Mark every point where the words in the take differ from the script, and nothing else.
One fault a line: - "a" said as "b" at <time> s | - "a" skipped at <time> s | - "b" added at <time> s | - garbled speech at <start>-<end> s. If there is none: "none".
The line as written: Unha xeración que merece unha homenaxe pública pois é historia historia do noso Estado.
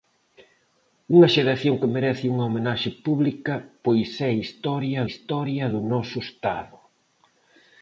none